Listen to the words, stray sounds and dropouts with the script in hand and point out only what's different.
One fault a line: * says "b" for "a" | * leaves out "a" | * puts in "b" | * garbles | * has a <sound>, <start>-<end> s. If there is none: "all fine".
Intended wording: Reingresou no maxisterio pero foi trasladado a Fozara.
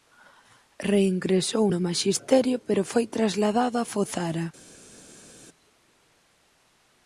all fine